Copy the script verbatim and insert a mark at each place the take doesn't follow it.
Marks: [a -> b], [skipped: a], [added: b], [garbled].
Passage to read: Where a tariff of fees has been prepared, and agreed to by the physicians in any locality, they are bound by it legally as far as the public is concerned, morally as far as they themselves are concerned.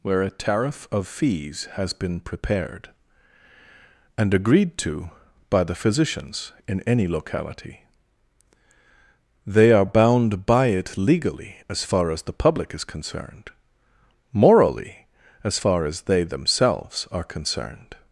Where a tariff of fees has been prepared, and agreed to by the physicians in any locality, they are bound by it legally as far as the public is concerned, morally as far as they themselves are concerned.